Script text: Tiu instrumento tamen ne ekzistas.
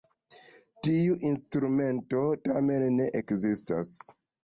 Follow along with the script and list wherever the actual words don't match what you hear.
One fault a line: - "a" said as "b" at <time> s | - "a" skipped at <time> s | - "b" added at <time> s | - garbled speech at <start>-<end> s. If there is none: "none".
none